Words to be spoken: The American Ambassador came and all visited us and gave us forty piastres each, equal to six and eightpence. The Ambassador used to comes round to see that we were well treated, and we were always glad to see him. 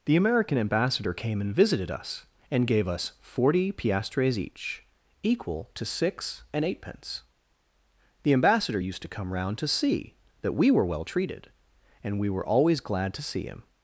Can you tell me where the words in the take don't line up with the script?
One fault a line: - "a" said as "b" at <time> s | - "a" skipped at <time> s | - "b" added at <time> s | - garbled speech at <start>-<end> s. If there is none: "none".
- "all" skipped at 1.5 s
- "comes" said as "come" at 9.1 s